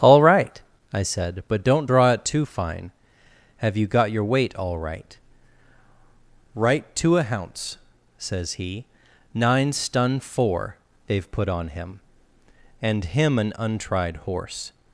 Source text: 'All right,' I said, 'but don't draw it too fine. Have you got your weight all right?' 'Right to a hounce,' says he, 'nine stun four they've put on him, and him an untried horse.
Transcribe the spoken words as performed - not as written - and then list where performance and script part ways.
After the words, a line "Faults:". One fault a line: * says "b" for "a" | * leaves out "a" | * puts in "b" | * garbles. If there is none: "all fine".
'All right,' I said, 'but don't draw it too fine. Have you got your weight all right?' 'Right to a hounce,' says he, 'nine stun four they've put on him, and him an untried horse.
Faults:
all fine